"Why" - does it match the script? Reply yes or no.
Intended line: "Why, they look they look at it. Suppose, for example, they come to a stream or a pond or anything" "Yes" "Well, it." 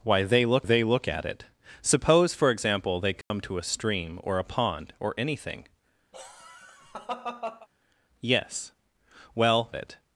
yes